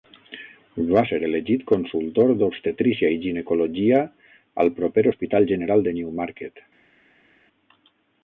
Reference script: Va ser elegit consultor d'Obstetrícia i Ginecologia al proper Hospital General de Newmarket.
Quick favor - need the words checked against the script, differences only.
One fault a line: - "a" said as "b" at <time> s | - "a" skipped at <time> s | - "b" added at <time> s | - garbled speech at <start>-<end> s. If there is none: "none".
none